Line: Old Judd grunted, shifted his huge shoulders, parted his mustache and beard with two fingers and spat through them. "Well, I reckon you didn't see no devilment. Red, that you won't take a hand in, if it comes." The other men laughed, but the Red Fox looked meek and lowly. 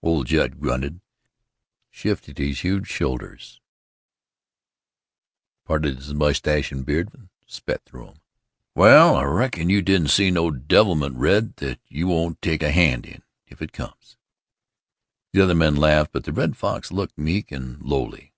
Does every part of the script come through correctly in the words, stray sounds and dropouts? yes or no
no